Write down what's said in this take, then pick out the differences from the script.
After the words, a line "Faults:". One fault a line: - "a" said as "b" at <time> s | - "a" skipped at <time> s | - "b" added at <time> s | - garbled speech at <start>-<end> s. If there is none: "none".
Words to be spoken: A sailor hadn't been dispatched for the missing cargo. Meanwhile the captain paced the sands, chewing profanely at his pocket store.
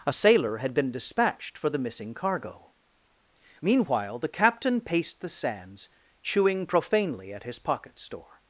A sailor had been dispatched for the missing cargo. Meanwhile the captain paced the sands, chewing profanely at his pocket store.
Faults:
- "hadn't" said as "had" at 0.6 s